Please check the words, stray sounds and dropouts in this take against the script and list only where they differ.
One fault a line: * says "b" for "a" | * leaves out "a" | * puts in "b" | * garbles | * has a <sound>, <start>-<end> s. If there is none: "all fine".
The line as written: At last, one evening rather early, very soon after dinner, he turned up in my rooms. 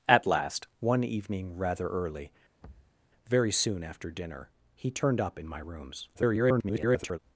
* has a thud, 2.6-3.0 s
* garbles